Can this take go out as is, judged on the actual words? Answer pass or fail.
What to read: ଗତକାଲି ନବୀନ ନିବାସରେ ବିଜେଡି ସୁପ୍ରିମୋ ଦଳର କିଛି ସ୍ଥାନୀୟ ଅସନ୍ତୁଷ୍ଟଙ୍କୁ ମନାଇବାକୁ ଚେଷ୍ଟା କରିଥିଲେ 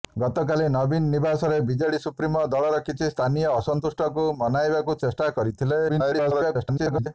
fail